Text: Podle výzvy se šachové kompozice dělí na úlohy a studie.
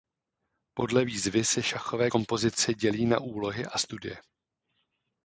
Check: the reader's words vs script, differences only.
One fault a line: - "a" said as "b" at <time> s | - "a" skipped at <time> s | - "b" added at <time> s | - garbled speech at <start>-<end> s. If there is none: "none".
none